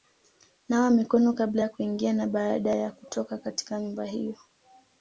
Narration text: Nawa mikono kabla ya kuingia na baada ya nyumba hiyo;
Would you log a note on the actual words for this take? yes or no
yes